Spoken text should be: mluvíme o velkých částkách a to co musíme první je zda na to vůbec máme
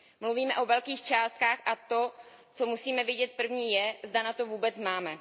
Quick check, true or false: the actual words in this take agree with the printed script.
false